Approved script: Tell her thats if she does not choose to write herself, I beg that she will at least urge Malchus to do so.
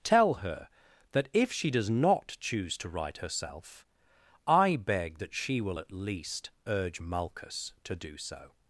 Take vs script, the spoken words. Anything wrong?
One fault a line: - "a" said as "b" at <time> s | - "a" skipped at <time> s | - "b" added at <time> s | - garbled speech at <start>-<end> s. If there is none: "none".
- "thats" said as "that" at 1.1 s